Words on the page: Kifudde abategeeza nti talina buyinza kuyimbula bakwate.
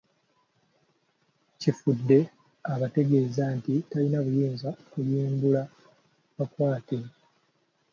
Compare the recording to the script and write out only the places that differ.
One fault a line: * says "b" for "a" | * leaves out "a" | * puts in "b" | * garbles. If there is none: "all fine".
all fine